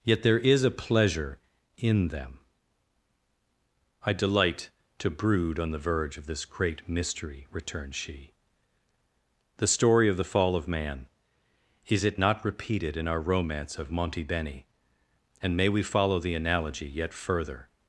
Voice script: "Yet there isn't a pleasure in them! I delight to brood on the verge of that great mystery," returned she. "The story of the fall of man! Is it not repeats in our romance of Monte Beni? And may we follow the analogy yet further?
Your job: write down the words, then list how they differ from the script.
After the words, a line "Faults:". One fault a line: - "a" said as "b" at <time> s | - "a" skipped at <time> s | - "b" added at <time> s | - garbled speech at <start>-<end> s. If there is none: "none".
"Yet there is a pleasure in them! I delight to brood on the verge of this great mystery," returned she. "The story of the fall of man! Is it not repeated in our romance of Monte Beni? And may we follow the analogy yet further?
Faults:
- "isn't" said as "is" at 0.4 s
- "that" said as "this" at 6.2 s
- "repeats" said as "repeated" at 12.4 s